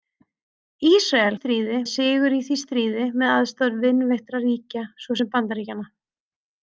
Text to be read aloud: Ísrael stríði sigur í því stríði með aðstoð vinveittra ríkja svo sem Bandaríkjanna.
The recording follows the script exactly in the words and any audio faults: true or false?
true